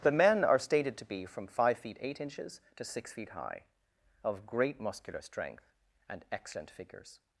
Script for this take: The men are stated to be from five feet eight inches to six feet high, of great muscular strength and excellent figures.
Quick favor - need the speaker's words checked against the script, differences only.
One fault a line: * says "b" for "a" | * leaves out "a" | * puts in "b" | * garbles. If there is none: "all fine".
all fine